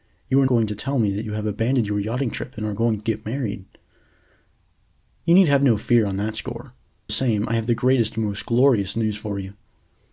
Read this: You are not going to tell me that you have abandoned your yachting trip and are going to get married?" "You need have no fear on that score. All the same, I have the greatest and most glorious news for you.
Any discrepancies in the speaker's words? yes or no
yes